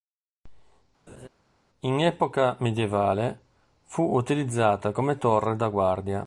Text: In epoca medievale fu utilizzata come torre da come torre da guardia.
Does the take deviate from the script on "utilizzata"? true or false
false